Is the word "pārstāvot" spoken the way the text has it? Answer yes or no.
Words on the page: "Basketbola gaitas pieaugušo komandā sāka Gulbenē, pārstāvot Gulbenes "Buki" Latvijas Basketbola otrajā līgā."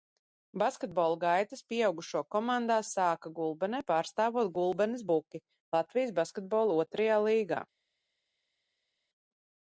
yes